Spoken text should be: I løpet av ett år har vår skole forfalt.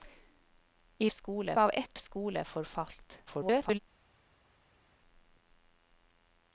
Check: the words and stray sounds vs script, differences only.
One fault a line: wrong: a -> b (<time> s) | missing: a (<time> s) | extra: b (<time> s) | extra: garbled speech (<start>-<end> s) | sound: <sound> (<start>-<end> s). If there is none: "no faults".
wrong: løpet -> skole (1.0 s)
missing: år har vår (2.0 s)
extra: garbled speech (3.3-3.8 s)